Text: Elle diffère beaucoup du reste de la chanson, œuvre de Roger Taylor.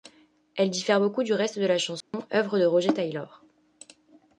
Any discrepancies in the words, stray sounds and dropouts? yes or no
yes